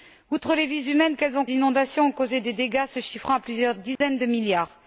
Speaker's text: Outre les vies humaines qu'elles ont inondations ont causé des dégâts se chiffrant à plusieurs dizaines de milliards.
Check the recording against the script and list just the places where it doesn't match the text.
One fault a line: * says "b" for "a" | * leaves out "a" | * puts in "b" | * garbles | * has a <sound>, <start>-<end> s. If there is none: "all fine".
* has a dropout, 4.0-4.0 s